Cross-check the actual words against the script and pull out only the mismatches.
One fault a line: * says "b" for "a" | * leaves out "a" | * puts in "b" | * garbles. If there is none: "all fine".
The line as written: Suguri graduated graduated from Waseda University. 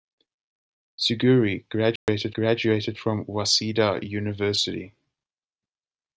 all fine